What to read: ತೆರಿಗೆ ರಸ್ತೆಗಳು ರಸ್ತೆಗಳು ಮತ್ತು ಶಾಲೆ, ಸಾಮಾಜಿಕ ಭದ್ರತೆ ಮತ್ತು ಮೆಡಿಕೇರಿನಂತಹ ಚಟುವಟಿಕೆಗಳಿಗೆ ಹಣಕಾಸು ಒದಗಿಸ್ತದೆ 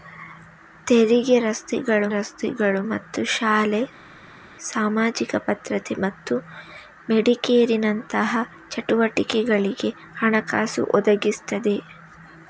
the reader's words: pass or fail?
pass